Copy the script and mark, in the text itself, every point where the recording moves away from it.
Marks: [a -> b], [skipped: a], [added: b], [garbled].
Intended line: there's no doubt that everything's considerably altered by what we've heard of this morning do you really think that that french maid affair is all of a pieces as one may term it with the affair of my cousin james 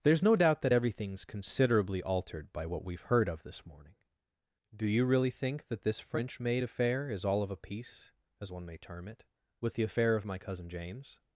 there's no doubt that everything's considerably altered by what we've heard of this morning do you really think that [that -> this] french maid affair is all of a [pieces -> piece] as one may term it with the affair of my cousin james